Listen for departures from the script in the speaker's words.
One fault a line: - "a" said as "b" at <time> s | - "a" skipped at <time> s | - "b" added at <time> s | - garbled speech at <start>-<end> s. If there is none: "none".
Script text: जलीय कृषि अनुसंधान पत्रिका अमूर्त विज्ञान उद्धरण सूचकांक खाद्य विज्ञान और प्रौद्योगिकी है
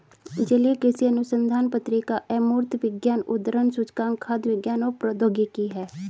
none